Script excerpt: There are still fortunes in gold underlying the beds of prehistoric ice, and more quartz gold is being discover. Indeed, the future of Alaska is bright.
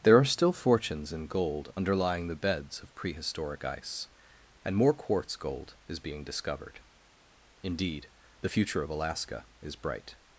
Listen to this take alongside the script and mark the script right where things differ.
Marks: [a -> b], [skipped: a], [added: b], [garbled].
There are still fortunes in gold underlying the beds of prehistoric ice, and more quartz gold is being [discover. -> discovered] Indeed, the future of Alaska is bright.